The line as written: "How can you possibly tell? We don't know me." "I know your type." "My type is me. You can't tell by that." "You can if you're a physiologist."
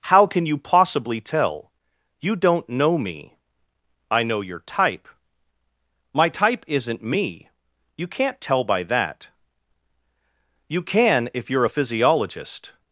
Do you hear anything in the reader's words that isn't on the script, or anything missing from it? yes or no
yes